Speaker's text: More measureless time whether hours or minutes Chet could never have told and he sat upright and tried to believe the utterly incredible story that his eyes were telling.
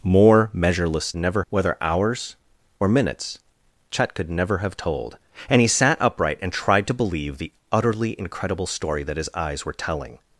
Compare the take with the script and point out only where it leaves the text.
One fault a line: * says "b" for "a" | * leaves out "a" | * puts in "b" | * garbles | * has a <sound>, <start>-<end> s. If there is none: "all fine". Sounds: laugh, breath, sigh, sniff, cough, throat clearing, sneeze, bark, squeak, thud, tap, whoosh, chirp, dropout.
* says "never" for "time"